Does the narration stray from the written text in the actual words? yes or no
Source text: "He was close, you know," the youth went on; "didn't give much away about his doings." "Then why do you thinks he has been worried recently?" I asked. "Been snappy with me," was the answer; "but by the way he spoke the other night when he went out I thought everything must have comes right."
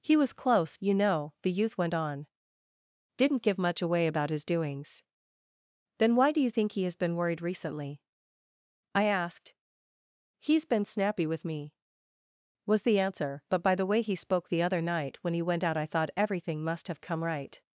yes